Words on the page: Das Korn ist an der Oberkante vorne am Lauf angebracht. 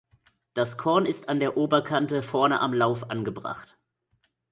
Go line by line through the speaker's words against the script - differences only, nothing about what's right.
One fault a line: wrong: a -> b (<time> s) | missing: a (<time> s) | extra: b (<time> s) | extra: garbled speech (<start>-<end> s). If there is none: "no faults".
no faults